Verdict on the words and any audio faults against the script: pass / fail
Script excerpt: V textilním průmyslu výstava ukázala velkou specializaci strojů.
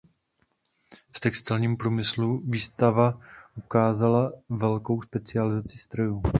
pass